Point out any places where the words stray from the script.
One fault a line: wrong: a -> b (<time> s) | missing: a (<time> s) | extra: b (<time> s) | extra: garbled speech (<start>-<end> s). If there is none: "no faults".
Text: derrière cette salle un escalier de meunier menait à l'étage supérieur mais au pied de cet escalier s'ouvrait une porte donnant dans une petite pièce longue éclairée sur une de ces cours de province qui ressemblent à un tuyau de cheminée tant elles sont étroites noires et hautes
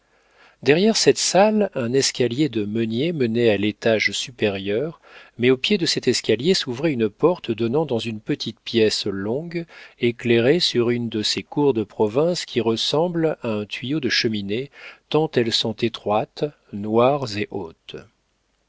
no faults